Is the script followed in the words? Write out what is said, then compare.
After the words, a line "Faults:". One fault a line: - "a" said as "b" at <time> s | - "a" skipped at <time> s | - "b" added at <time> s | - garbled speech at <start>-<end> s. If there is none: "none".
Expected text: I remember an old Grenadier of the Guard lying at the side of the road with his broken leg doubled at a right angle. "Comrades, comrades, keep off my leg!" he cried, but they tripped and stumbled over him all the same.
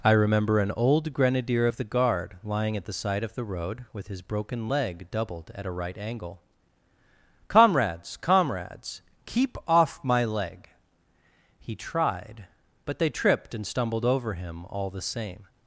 I remember an old Grenadier of the Guard lying at the side of the road with his broken leg doubled at a right angle. "Comrades, comrades, keep off my leg!" he tried, but they tripped and stumbled over him all the same.
Faults:
- "cried" said as "tried" at 11.7 s